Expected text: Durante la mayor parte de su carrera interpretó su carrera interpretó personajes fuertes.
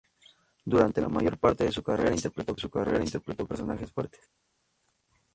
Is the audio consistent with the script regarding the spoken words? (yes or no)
yes